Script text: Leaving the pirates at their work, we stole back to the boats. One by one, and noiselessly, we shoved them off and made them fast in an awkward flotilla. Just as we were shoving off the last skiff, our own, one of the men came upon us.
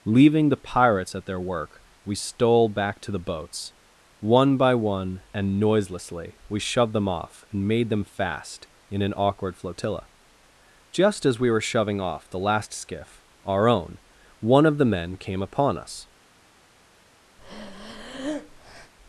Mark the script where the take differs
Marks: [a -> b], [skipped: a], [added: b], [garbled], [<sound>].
Leaving the pirates at their work, we stole back to the boats. One by one, and noiselessly, we shoved them off and made them fast in an awkward flotilla. Just as we were shoving off the last skiff, our own, one of the men came upon us. [breath]